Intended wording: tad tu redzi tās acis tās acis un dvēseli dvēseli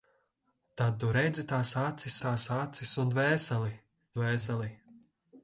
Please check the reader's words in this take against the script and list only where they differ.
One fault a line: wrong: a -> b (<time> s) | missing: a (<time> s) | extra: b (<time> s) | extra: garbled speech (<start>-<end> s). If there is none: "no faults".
no faults